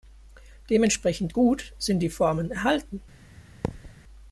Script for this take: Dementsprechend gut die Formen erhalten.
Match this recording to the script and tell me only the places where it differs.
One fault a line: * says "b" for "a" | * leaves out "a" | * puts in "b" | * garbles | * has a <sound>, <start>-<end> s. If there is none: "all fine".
* puts in "sind"
* has a thud, 3.6-3.9 s